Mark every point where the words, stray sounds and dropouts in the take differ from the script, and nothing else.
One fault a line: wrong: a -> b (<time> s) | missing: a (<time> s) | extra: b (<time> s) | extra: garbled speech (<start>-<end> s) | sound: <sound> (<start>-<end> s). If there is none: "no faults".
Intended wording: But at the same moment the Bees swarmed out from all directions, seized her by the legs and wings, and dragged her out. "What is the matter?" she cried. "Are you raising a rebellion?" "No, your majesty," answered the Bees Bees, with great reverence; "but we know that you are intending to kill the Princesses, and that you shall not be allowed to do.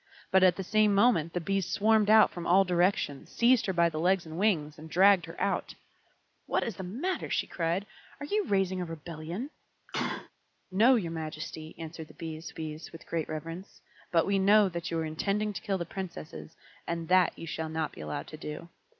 sound: sneeze (9.9-10.3 s)